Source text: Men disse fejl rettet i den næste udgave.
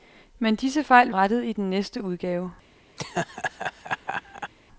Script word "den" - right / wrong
right